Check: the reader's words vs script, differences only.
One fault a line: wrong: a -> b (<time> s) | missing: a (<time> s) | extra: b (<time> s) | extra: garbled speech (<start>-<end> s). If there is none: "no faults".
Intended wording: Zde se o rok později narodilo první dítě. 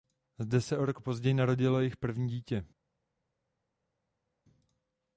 extra: jejich (1.8 s)